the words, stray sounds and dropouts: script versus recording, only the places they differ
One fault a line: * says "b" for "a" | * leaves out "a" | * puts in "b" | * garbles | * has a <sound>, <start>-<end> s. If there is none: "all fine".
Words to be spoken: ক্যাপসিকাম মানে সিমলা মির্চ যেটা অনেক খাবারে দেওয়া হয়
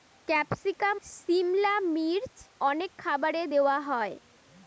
* leaves out "মানে"
* leaves out "যেটা"